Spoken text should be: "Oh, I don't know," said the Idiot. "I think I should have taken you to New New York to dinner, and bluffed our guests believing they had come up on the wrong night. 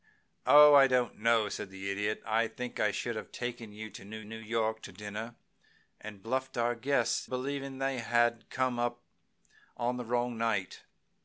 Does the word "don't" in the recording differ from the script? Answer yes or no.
no